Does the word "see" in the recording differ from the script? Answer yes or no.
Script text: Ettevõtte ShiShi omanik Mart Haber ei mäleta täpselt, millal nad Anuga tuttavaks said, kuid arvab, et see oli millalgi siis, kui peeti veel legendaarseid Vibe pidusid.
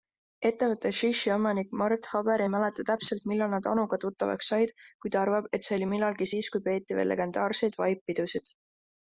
no